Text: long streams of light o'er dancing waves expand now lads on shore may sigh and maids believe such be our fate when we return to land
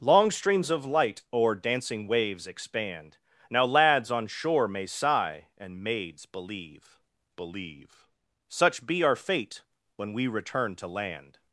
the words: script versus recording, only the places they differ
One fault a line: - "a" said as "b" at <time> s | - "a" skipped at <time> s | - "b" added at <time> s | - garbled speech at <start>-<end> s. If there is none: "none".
- "believe" added at 7.3 s